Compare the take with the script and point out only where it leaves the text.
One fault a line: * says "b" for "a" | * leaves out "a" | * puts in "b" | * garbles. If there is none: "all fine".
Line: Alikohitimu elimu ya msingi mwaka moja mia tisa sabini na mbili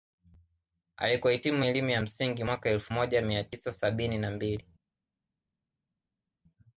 * puts in "elfu"